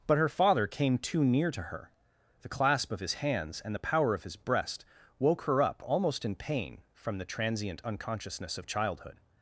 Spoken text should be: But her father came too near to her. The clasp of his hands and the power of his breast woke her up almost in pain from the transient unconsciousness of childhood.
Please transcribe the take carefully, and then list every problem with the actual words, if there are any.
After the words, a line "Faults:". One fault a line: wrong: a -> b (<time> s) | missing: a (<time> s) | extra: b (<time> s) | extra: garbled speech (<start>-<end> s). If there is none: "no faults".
But her father came too near to her. The clasp of his hands and the power of his breast woke her up almost in pain from the transient unconsciousness of childhood.
Faults:
no faults